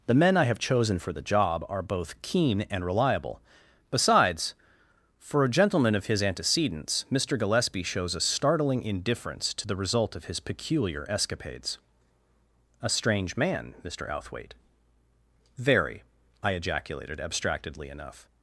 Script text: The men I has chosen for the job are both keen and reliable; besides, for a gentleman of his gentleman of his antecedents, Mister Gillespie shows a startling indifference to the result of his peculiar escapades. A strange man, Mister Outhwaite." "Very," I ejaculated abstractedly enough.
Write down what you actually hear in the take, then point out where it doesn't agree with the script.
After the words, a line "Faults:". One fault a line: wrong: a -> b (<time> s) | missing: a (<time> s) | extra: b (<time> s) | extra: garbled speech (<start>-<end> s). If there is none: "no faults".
The men I have chosen for the job are both keen and reliable; besides, for a gentleman of his antecedents, Mister Gillespie shows a startling indifference to the result of his peculiar escapades. A strange man, Mister Outhwaite." "Very," I ejaculated abstractedly enough.
Faults:
wrong: has -> have (0.5 s)
missing: gentleman of his (6.2 s)